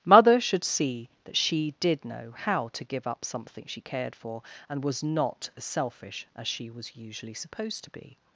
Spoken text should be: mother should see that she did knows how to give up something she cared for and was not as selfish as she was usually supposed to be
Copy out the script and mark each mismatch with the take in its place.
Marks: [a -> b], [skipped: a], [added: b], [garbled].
mother should see that she did [knows -> know] how to give up something she cared for and was not as selfish as she was usually supposed to be